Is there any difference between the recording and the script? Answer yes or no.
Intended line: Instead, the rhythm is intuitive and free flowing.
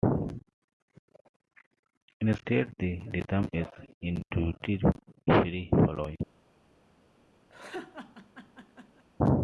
yes